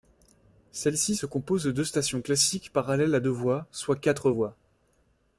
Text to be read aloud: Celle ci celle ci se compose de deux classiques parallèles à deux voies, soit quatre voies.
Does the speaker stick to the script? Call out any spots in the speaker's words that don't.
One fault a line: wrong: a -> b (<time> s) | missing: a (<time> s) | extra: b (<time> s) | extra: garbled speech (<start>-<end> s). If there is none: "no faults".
missing: celle ci (1.1 s)
extra: stations (1.8 s)